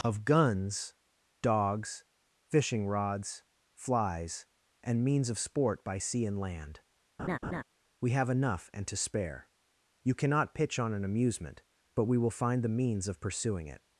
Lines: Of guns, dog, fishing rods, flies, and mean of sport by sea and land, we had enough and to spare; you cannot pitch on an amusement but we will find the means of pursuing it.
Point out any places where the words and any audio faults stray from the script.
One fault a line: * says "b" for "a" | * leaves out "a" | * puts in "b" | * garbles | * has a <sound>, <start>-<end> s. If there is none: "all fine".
* says "dogs" for "dog"
* says "means" for "mean"
* has a laugh, 7.2-7.6 s
* says "have" for "had"